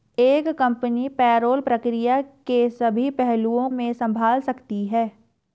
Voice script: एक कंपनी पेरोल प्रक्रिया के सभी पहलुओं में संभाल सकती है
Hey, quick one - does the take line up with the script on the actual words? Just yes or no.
yes